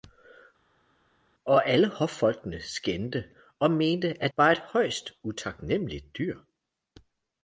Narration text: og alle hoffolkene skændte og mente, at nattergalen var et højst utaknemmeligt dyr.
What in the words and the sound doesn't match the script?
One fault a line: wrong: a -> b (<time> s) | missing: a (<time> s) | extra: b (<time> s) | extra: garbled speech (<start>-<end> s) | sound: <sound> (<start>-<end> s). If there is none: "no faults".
missing: nattergalen (4.3 s)